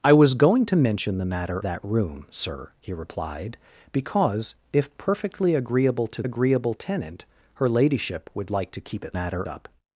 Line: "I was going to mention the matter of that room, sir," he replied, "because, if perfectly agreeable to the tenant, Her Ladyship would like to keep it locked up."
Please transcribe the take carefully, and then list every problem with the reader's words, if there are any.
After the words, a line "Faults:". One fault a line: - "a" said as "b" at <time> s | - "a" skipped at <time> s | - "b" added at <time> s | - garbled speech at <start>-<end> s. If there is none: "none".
"I was going to mention the matter that room, sir," he replied, "because, if perfectly agreeable to agreeable tenant, Her Ladyship would like to keep it matter up."
Faults:
- "of" skipped at 1.6 s
- "the" said as "agreeable" at 6.2 s
- "locked" said as "matter" at 9.1 s